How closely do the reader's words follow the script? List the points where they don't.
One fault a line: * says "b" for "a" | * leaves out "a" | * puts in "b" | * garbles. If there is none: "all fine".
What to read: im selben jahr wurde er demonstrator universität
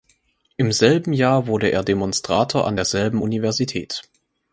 * puts in "an derselben"